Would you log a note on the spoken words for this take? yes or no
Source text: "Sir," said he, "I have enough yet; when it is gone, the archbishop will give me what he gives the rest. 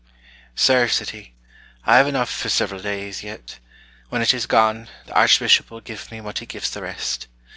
yes